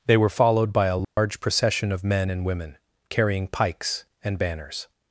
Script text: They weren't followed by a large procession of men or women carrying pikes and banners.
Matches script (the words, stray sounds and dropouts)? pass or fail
fail